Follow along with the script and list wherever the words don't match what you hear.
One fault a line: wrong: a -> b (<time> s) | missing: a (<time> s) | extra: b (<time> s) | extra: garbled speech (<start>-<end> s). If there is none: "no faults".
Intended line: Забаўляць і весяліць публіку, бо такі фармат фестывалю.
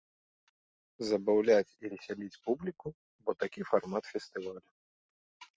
no faults